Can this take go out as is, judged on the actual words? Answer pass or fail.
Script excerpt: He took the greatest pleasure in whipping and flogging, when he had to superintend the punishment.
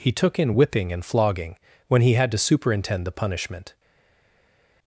fail